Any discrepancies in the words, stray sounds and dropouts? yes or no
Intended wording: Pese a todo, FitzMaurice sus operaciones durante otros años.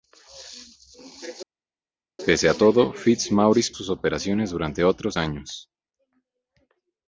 no